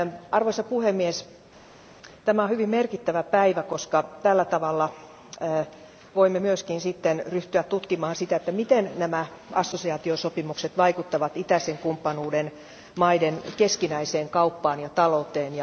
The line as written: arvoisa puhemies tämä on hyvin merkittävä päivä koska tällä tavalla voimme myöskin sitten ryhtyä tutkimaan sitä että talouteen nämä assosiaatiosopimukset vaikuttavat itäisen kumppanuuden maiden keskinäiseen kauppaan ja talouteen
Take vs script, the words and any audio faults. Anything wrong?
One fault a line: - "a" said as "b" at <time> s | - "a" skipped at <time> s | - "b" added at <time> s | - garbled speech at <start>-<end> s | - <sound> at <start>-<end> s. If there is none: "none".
- "talouteen" said as "miten" at 8.5 s